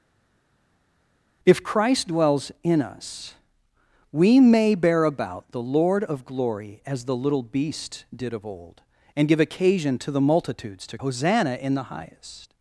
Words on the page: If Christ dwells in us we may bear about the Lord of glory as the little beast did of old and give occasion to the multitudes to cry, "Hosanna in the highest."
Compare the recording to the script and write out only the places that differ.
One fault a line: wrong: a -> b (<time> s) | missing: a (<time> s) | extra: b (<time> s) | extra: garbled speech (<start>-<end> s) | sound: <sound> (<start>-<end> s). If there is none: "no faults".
missing: cry (11.0 s)